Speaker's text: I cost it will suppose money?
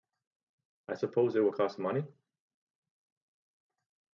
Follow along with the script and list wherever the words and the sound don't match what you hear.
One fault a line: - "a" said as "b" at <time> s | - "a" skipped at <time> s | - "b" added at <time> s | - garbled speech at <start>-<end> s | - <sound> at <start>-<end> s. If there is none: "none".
- "cost" said as "suppose" at 0.9 s
- "suppose" said as "cost" at 1.5 s